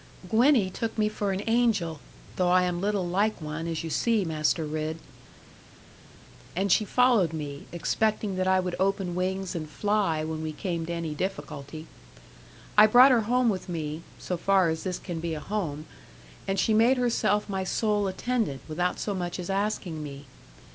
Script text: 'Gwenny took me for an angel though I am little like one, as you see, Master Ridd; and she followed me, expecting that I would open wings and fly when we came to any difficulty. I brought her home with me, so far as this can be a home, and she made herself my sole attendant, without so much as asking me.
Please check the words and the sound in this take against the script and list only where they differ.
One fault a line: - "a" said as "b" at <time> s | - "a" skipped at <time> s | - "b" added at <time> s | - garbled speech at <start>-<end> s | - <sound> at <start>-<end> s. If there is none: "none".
none